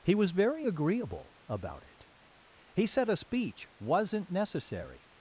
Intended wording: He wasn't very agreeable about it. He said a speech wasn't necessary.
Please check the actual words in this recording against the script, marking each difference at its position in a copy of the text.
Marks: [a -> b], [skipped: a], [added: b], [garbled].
He [wasn't -> was] very agreeable about it. He said a speech wasn't necessary.